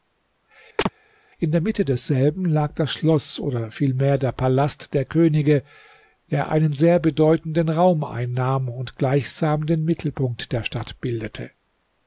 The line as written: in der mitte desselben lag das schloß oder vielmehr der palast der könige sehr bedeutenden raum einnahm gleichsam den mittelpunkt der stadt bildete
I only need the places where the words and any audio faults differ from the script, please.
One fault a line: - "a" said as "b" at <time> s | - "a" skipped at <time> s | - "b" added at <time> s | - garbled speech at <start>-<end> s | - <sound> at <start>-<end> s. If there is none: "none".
- chirp at 0.8-0.9 s
- "der einen" added at 6.3 s
- "und" added at 8.7 s